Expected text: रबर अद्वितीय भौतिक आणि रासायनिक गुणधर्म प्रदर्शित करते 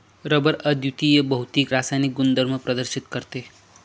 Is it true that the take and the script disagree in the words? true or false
true